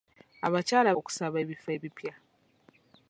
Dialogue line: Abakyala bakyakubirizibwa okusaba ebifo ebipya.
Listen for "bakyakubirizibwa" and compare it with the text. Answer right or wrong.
wrong